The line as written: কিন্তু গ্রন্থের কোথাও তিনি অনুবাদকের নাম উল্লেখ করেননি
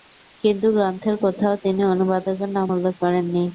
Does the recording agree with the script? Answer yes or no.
yes